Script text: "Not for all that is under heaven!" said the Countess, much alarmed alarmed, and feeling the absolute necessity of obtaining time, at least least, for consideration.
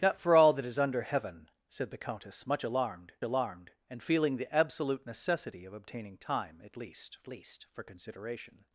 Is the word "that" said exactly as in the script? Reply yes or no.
yes